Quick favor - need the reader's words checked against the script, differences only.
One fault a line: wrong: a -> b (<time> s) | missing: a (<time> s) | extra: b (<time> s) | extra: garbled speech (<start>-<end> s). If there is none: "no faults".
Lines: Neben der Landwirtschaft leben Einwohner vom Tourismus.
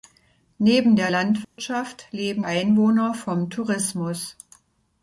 no faults